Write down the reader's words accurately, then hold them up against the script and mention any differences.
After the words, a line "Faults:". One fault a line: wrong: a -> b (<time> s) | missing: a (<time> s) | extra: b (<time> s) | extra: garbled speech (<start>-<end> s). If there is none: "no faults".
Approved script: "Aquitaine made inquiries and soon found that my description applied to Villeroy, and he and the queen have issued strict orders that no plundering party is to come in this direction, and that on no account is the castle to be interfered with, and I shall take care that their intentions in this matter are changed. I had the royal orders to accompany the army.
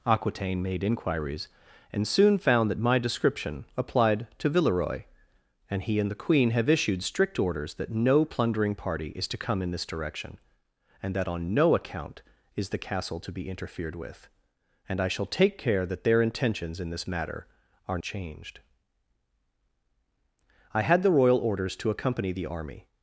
"Aquitaine made inquiries and soon found that my description applied to Villeroy, and he and the queen have issued strict orders that no plundering party is to come in this direction, and that on no account is the castle to be interfered with, and I shall take care that their intentions in this matter are changed. I had the royal orders to accompany the army.
Faults:
no faults